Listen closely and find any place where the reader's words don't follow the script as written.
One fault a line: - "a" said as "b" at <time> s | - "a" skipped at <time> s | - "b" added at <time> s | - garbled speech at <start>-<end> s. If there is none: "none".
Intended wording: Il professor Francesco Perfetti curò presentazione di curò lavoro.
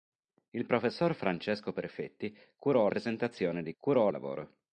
none